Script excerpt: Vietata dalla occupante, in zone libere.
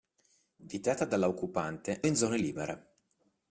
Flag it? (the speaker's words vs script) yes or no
no